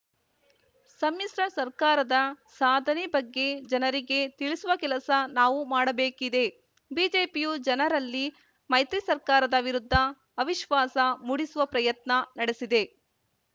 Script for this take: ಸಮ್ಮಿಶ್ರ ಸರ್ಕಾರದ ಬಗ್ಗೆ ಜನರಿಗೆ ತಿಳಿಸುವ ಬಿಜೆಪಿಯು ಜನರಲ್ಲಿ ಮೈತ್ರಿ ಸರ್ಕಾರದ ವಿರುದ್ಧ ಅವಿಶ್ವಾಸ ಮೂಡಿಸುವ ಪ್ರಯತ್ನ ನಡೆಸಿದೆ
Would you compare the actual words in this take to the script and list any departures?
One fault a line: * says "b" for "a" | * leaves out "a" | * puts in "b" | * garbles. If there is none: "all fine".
* puts in "ಸಾಧನೆ"
* puts in "ಕೆಲಸ ನಾವು ಮಾಡಬೇಕಿದೆ"